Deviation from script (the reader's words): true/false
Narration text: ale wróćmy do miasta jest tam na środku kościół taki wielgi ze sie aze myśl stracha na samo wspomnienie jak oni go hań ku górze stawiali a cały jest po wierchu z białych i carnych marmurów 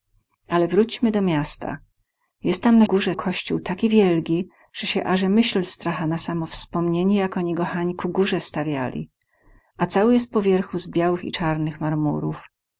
true